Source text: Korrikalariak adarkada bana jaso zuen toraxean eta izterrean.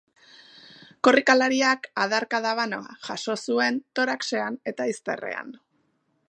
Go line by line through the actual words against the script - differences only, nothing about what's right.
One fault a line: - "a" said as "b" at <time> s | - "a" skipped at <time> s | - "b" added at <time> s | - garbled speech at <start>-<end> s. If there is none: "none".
none